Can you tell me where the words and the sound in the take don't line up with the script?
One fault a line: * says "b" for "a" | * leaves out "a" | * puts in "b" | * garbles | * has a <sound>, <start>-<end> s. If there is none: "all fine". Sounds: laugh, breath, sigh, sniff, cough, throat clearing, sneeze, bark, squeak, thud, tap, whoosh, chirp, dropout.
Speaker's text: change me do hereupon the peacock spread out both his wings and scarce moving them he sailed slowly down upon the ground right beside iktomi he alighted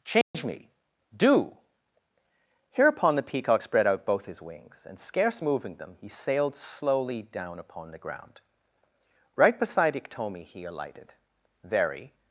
* has a dropout, 0.2-0.3 s
* puts in "very"